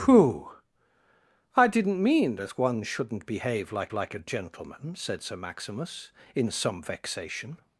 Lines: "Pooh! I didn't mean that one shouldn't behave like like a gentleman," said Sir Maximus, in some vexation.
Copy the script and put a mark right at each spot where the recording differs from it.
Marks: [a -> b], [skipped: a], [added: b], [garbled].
"Pooh! I didn't mean that one shouldn't behave like like a gentleman," said Sir Maximus, in some vexation.